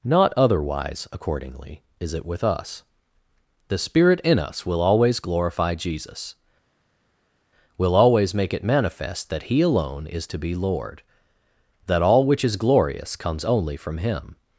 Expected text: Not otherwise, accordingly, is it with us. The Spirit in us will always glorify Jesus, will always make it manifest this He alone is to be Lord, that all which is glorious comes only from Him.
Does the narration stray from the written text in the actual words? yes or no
yes